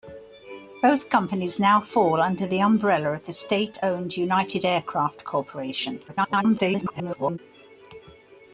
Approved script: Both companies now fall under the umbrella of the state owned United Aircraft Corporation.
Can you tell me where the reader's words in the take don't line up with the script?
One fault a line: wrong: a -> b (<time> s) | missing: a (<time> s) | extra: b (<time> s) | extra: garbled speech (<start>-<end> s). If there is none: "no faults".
extra: garbled speech (6.1-7.4 s)